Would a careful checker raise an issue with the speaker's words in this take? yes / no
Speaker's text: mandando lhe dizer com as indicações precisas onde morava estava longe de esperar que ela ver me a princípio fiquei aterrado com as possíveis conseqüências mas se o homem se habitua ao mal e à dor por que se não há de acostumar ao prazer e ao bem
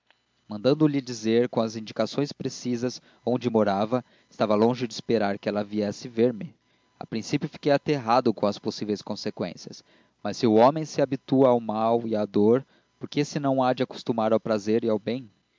yes